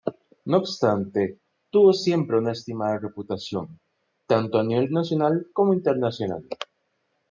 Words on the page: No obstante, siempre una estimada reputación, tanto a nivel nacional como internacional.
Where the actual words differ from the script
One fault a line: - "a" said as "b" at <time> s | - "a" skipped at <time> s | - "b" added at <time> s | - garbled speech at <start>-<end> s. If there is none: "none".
- "tuvo" added at 1.7 s